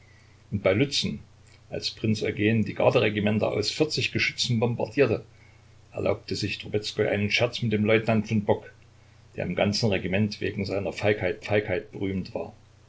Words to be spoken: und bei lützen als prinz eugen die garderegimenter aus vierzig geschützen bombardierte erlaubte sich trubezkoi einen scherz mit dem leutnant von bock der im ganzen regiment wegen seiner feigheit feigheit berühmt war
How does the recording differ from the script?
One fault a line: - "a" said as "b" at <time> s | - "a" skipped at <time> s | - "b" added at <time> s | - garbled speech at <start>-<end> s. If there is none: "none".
none